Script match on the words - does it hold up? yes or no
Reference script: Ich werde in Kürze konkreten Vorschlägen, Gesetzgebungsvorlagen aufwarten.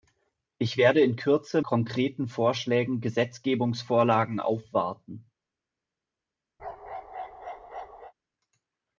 yes